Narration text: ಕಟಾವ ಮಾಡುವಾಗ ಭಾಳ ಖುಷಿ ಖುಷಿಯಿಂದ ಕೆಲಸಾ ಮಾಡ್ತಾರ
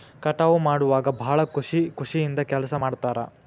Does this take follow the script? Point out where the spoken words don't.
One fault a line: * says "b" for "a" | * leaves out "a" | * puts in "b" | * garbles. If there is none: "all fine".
all fine